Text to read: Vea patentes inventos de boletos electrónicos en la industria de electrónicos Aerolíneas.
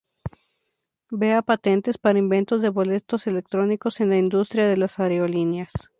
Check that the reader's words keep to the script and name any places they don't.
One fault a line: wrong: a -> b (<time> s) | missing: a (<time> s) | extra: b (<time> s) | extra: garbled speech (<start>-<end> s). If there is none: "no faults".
extra: para (2.0 s)
wrong: electrónicos -> las (4.8 s)